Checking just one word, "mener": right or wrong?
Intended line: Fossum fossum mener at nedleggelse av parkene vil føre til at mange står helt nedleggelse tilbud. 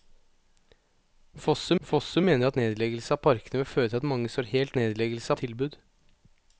right